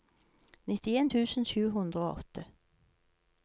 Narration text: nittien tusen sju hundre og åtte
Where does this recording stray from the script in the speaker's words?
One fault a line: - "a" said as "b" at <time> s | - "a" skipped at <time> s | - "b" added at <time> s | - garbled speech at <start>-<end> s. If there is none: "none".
none